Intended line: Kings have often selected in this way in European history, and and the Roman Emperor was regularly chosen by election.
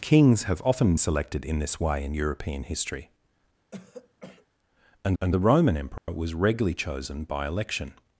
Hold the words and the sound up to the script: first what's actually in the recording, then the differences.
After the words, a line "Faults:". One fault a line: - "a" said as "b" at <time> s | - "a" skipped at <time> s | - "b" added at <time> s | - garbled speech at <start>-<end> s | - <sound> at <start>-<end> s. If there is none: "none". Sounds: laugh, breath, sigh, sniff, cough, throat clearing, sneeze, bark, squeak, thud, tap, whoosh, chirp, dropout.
Kings have often selected in this way in European history, and and the Roman Emperor was regularly chosen by election.
Faults:
- throat clearing at 3.7-4.5 s
- dropout at 6.0-6.1 s